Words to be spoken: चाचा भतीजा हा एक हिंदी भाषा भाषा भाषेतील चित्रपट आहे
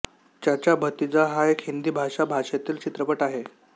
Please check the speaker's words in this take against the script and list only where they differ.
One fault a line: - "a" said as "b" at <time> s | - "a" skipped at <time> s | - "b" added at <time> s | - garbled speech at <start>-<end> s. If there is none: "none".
- "भाषा" skipped at 2.2 s